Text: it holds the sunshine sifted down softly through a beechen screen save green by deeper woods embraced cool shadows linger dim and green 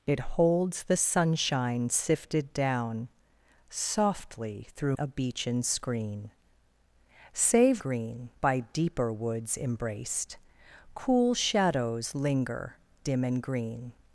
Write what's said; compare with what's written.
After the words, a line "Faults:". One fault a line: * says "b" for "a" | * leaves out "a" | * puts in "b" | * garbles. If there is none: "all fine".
it holds the sunshine sifted down softly through a beechen screen save green by deeper woods embraced cool shadows linger dim and green
Faults:
all fine